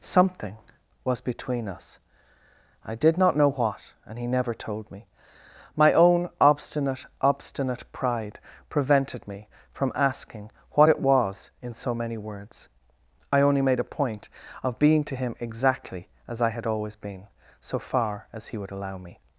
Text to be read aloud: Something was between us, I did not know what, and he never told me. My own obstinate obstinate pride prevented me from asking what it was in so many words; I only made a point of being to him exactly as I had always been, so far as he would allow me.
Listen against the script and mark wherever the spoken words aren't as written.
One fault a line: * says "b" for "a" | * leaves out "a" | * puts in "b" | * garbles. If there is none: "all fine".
all fine